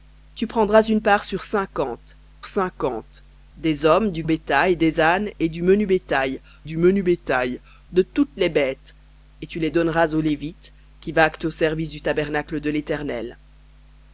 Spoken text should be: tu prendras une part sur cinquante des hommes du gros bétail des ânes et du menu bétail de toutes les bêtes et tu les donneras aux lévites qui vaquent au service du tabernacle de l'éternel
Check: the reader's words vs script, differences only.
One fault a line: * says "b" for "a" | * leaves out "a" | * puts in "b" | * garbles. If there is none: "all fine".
* puts in "cinquante"
* leaves out "gros"
* puts in "du menu bétail"